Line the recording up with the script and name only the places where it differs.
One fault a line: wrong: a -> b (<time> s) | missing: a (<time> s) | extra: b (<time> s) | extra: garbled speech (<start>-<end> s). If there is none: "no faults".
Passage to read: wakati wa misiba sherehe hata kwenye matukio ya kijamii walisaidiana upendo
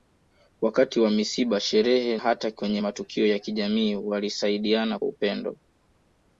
no faults